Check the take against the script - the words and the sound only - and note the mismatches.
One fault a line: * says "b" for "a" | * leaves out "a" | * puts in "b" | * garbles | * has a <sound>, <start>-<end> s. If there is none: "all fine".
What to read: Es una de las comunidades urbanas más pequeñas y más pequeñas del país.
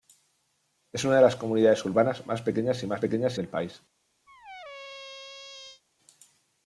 * has a squeak, 4.3-5.8 s